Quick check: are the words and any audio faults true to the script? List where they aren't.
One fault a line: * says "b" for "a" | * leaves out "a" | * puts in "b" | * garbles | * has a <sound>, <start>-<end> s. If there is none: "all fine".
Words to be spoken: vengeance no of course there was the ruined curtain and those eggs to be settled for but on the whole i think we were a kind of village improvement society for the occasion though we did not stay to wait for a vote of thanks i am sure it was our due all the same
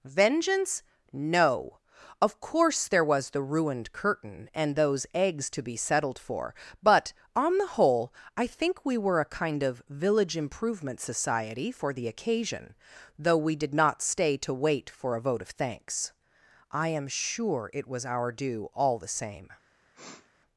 * has a sniff, 19.9-20.3 s